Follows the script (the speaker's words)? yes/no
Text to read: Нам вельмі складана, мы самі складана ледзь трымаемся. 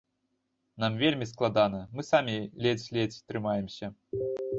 no